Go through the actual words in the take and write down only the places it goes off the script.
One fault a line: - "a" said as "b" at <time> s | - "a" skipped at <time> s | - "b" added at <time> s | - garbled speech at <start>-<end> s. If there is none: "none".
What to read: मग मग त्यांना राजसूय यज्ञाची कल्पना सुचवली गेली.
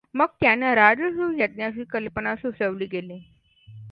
- "मग" skipped at 0.2 s